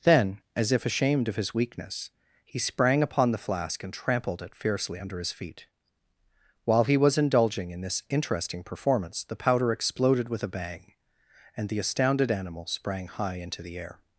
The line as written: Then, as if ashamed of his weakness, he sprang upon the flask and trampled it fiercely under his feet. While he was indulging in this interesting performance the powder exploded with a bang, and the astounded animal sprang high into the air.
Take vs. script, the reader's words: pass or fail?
pass